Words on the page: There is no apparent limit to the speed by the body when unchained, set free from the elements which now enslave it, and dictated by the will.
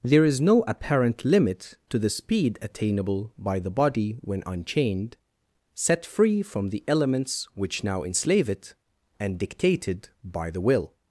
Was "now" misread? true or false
false